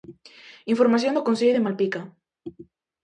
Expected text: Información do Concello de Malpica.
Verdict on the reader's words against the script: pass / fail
pass